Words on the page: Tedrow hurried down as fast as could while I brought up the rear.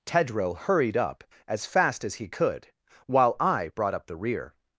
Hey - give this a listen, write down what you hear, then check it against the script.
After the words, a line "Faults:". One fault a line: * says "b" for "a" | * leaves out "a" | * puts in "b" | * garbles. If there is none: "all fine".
Tedrow hurried up as fast as he could while I brought up the rear.
Faults:
* says "up" for "down"
* puts in "he"